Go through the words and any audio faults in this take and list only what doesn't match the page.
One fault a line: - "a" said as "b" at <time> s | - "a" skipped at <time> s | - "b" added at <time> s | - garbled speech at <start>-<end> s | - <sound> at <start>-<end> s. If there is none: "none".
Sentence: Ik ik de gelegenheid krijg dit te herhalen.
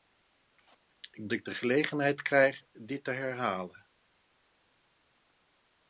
none